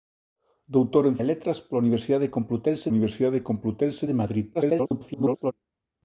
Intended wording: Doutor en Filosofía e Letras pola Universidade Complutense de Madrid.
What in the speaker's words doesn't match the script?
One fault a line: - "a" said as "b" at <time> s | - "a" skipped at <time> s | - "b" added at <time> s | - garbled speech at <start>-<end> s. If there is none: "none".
- "Filosofía" skipped at 1.1 s
- "Universidade Complutense" added at 2.9 s
- garbled speech at 4.5-5.5 s